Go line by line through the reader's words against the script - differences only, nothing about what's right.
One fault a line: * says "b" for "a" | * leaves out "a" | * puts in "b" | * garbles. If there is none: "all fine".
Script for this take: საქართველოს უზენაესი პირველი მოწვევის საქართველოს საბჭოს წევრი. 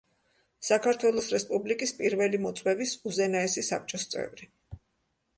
* says "რესპუბლიკის" for "უზენაესი"
* says "უზენაესი" for "საქართველოს"